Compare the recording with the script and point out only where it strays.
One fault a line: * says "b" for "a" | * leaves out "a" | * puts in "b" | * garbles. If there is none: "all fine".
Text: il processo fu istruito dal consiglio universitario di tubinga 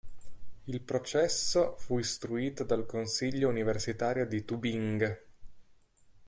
all fine